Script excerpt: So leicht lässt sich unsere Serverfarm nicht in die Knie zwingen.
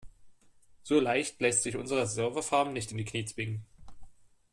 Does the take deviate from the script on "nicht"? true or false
false